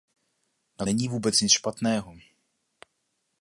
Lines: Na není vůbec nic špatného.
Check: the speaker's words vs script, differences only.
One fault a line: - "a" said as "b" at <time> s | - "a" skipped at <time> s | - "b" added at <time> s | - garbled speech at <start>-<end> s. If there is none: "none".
none